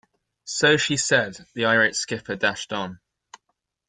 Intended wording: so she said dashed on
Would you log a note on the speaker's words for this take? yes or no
yes